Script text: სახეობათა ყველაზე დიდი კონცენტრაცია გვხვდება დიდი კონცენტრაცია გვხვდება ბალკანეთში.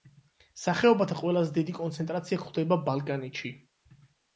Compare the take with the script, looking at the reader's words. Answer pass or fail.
fail